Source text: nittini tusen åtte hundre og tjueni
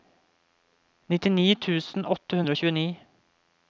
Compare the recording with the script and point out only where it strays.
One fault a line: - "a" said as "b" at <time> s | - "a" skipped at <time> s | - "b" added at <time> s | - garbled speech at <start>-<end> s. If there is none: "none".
none